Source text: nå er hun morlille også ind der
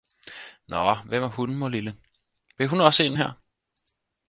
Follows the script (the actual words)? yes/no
no